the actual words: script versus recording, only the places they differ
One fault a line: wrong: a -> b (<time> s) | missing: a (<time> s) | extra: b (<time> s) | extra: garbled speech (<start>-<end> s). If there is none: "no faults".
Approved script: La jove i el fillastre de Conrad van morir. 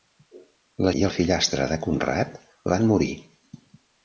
missing: jove (0.9 s)